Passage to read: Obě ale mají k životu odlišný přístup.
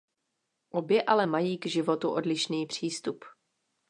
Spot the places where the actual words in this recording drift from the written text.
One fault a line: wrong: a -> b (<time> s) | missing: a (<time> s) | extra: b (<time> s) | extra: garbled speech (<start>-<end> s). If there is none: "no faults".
no faults